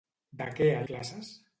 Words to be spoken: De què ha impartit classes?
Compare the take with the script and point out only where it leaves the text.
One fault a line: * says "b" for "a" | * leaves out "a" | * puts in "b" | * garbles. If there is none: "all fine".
* leaves out "impartit"